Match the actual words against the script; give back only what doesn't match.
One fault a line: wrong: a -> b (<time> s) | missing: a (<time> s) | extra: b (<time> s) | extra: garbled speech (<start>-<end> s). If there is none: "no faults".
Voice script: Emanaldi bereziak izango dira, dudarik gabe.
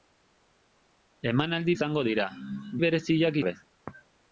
missing: bereziak (1.8 s)
wrong: dudarik -> bereziak (2.8 s)